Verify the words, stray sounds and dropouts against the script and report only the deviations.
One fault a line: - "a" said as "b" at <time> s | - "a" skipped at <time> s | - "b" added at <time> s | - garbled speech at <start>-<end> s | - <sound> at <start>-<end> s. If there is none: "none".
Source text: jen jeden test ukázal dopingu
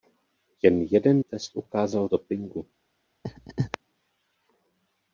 - laugh at 3.2-3.8 s